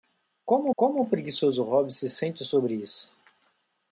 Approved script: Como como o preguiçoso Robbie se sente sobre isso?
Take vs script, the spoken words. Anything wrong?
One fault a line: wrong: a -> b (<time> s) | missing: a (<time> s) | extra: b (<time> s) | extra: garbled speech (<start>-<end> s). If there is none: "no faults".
no faults